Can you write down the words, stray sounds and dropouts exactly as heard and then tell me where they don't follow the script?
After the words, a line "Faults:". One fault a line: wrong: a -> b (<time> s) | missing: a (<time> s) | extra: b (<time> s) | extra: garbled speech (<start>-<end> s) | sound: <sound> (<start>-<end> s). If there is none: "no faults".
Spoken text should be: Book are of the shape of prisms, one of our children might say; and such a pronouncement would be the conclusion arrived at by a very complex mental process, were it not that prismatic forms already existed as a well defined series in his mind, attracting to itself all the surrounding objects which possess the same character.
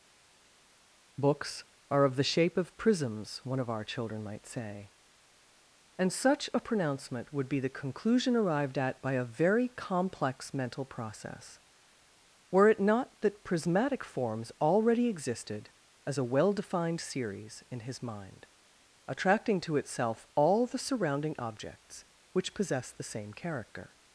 Books are of the shape of prisms, one of our children might say; and such a pronouncement would be the conclusion arrived at by a very complex mental process, were it not that prismatic forms already existed as a well defined series in his mind, attracting to itself all the surrounding objects which possess the same character.
Faults:
wrong: Book -> Books (1.2 s)